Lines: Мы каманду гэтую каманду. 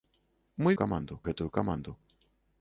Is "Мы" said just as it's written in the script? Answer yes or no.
yes